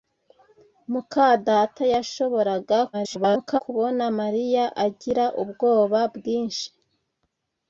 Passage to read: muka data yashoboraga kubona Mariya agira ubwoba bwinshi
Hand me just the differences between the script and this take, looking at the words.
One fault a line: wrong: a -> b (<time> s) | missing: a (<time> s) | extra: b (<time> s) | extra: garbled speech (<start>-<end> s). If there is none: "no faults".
extra: garbled speech (2.9-3.6 s)